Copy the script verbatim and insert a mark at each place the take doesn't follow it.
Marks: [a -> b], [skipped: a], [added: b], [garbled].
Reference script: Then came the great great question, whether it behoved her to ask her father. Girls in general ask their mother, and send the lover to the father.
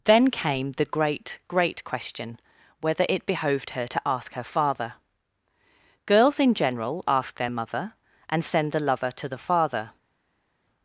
Then came the great great question, whether it behoved her to ask her father. Girls in general ask their mother, and send the lover to the father.